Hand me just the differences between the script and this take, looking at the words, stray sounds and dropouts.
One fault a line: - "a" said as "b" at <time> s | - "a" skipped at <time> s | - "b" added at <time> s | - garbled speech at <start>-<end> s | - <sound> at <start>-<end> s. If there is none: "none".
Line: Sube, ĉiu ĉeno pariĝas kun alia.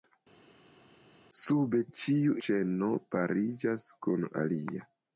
none